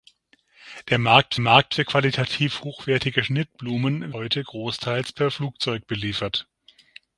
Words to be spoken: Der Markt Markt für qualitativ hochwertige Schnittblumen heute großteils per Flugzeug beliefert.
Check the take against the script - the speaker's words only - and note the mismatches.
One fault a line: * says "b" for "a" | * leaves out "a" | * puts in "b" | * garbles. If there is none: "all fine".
all fine